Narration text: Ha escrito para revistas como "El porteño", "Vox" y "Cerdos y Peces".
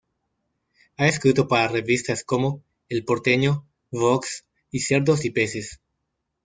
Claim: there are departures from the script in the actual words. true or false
false